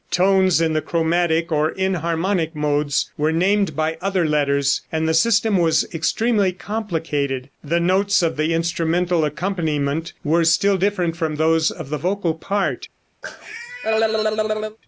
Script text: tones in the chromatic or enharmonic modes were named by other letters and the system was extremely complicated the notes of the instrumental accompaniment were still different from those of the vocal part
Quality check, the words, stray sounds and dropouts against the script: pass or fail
fail